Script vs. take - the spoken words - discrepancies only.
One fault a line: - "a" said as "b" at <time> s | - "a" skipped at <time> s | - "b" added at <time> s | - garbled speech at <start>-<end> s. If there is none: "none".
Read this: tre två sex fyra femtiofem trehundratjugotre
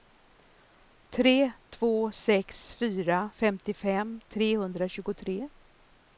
none